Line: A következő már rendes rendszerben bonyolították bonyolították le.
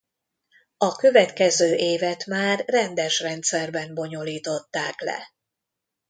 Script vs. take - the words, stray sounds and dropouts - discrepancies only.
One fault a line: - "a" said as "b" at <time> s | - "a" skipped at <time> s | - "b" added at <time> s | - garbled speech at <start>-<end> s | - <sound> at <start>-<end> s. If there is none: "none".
- "évet" added at 1.8 s
- "bonyolították" skipped at 5.0 s